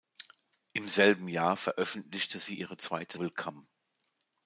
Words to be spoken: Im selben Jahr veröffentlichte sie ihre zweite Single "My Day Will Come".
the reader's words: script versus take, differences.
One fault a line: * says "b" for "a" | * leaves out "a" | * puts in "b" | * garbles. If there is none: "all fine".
* leaves out "Single My Day"